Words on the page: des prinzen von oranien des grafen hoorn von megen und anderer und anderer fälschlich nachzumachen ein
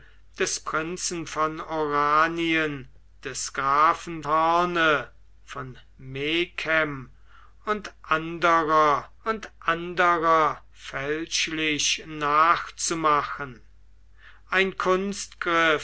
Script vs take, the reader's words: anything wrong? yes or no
no